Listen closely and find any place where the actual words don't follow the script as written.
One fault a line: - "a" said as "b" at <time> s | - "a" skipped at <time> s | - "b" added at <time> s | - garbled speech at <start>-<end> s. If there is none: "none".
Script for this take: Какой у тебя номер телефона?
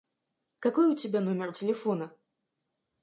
none